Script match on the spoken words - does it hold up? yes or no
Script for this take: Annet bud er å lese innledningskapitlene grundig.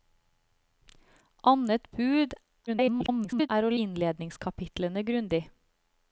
no